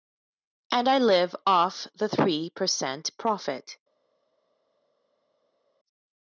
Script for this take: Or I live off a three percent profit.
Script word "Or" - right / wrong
wrong